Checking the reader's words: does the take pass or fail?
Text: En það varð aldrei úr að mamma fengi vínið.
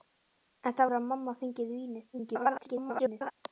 fail